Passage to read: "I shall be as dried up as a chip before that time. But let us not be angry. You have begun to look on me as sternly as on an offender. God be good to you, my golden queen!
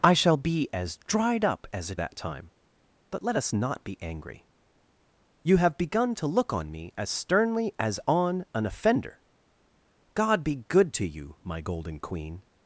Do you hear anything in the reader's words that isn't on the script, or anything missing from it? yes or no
yes